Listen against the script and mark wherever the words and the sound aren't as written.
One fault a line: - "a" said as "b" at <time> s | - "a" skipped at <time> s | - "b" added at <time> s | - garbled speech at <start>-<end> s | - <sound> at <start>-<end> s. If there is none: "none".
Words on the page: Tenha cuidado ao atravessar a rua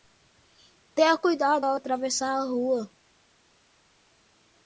none